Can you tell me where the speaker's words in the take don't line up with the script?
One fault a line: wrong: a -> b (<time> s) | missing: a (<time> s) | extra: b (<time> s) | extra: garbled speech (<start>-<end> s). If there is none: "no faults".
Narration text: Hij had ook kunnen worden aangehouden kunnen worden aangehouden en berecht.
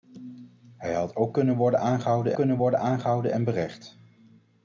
no faults